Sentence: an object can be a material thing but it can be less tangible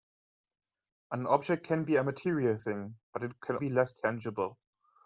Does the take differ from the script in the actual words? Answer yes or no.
no